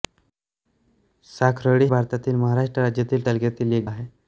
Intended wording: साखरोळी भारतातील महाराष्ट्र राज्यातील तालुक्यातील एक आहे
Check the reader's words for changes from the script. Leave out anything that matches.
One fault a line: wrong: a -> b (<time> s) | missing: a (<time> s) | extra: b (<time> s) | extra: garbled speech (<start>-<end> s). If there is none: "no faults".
no faults